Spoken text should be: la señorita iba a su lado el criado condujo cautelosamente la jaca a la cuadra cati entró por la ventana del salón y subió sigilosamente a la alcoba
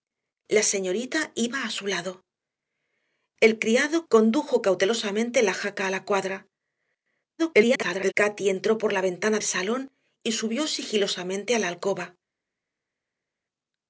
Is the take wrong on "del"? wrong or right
wrong